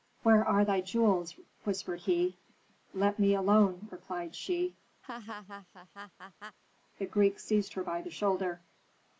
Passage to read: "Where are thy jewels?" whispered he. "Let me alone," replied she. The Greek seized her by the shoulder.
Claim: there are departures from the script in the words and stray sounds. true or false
true